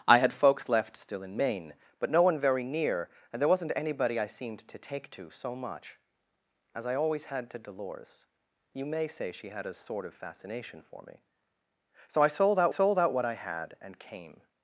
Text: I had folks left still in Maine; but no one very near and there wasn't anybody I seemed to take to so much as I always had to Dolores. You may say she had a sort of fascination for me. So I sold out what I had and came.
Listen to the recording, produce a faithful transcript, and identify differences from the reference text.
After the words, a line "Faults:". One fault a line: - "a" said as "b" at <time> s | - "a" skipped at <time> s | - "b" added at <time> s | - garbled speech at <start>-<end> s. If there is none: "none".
I had folks left still in Maine; but no one very near and there wasn't anybody I seemed to take to so much as I always had to Dolores. You may say she had a sort of fascination for me. So I sold out sold out what I had and came.
Faults:
- "sold out" added at 12.7 s